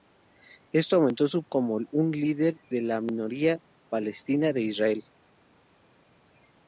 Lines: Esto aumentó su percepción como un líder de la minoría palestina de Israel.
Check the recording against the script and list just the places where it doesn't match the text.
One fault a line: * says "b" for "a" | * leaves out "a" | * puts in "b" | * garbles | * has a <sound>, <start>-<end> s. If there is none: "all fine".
* leaves out "percepción"